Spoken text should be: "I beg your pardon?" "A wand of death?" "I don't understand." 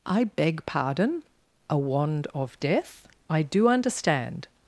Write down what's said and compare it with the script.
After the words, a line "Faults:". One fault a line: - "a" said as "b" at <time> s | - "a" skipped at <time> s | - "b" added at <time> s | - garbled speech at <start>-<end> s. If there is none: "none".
"I beg pardon?" "A wand of death?" "I do understand."
Faults:
- "your" skipped at 0.7 s
- "don't" said as "do" at 3.4 s